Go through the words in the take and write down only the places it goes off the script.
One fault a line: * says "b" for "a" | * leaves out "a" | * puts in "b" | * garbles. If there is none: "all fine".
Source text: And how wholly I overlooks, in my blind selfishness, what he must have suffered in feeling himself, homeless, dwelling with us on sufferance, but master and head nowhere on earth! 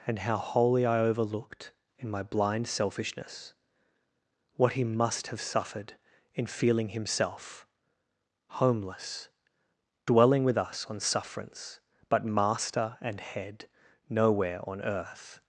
* says "overlooked" for "overlooks"